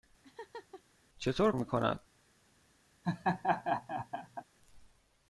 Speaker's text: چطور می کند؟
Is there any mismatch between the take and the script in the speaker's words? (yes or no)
no